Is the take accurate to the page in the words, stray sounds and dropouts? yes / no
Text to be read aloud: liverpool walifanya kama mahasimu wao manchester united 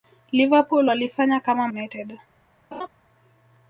no